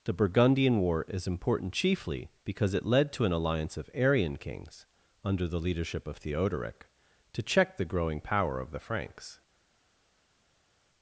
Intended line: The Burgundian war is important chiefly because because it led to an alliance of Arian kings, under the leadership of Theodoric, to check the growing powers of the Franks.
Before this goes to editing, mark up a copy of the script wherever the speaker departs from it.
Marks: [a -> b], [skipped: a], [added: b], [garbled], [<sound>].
The Burgundian war is important chiefly because [skipped: because] it led to an alliance of Arian kings, under the leadership of Theodoric, to check the growing [powers -> power] of the Franks.